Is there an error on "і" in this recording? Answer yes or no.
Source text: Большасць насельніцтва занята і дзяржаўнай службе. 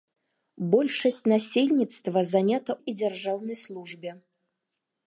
no